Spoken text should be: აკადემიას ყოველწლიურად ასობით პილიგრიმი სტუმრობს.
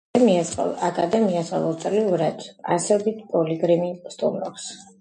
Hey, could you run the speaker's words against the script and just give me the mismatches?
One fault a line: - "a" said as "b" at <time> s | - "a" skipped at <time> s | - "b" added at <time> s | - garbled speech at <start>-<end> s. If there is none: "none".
none